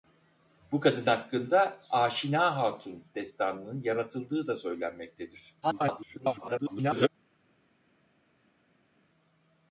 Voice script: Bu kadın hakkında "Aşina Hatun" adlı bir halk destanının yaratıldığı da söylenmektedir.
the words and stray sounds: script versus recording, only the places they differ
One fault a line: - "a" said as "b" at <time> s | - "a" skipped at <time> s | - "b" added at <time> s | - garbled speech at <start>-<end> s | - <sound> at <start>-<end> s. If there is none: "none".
- "adlı bir halk" skipped at 3.0 s
- garbled speech at 5.6-7.1 s